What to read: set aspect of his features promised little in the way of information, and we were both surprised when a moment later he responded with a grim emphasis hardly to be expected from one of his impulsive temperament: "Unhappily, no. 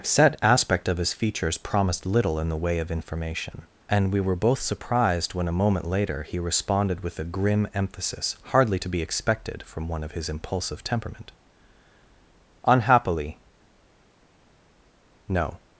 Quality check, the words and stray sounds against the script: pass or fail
pass